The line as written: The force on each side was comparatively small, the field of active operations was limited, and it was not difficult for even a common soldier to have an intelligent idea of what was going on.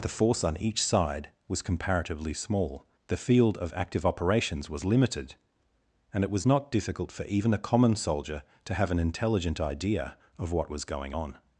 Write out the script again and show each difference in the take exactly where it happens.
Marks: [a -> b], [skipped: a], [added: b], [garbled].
The force on each side was comparatively small, the field of active operations was limited, and it was not difficult for even a common soldier to have an intelligent idea of what was going on.